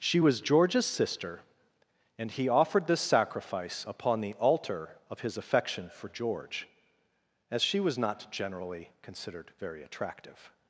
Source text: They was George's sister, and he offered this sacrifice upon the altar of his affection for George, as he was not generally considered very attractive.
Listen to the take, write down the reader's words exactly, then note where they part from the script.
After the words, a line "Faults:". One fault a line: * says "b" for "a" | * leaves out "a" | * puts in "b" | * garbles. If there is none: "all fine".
She was George's sister, and he offered this sacrifice upon the altar of his affection for George, as she was not generally considered very attractive.
Faults:
* says "She" for "They"
* says "she" for "he"